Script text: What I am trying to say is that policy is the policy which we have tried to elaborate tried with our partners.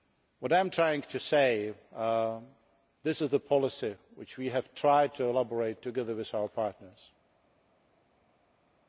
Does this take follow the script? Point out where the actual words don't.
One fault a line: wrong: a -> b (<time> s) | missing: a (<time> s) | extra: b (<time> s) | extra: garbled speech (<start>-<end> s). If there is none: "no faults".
wrong: policy -> this (3.0 s)
wrong: tried -> together (5.8 s)